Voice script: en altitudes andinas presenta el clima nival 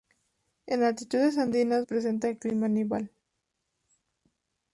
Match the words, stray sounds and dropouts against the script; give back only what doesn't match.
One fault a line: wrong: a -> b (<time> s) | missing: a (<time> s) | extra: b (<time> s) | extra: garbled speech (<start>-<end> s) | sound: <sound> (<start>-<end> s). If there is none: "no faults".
no faults